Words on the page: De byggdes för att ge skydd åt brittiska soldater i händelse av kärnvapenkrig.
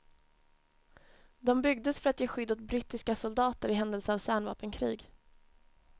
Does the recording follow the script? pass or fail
pass